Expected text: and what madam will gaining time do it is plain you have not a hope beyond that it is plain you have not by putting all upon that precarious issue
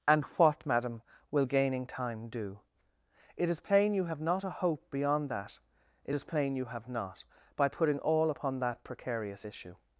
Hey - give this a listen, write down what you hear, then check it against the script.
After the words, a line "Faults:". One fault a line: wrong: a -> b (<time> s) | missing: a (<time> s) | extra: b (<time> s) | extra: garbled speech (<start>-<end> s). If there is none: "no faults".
and what madam will gaining time do it is plain you have not a hope beyond that it is plain you have not by putting all upon that precarious issue
Faults:
no faults